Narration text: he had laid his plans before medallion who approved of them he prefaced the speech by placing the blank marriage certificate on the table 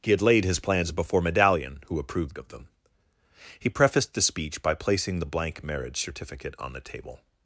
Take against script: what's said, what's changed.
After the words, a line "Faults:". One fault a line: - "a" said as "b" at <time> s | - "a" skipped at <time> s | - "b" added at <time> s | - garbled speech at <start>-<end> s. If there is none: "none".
he had laid his plans before medallion who approved of them he prefaced the speech by placing the blank marriage certificate on the table
Faults:
none